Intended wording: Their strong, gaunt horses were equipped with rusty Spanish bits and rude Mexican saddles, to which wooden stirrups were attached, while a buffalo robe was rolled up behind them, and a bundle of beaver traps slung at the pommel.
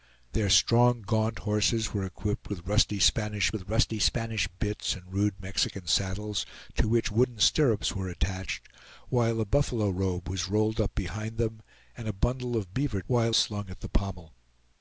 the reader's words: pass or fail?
fail